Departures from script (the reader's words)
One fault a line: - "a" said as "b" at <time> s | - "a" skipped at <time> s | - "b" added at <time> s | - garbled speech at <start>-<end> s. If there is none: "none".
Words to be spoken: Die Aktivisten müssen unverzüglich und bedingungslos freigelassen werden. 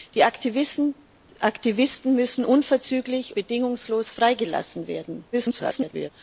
- "und" skipped at 3.3 s
- garbled speech at 5.3-6.1 s